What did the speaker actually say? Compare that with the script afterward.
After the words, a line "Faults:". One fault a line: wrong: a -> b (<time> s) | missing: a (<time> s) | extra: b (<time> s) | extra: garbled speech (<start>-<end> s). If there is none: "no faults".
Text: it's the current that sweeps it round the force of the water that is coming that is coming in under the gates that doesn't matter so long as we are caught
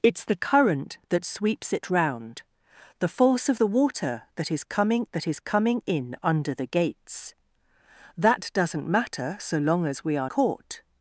it's the current that sweeps it round the force of the water that is coming that is coming in under the gates that doesn't matter so long as we are caught
Faults:
no faults